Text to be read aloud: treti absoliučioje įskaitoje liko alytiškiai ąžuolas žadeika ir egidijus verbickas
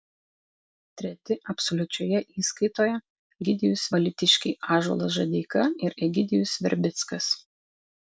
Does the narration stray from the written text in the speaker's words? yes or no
yes